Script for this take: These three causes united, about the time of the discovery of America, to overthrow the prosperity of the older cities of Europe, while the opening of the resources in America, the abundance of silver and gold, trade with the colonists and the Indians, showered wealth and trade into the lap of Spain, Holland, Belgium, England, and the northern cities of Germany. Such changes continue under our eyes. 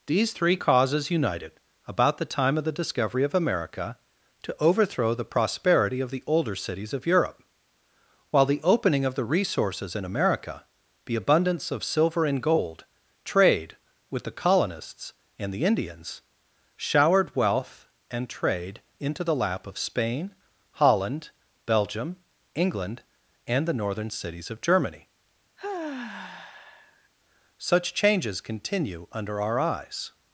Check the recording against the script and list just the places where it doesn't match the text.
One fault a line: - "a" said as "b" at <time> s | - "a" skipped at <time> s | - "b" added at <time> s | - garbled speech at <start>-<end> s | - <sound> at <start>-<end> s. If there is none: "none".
- sigh at 25.6-27.1 s